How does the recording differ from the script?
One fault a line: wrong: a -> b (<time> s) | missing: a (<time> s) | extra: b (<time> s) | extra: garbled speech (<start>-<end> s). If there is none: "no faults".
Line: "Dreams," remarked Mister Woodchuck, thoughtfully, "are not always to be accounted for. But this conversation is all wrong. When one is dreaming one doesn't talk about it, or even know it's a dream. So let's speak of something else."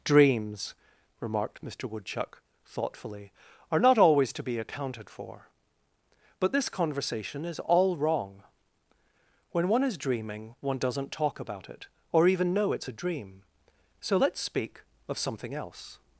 no faults